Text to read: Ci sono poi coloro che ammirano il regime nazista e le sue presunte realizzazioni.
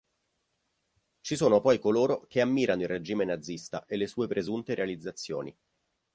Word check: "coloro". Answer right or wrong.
right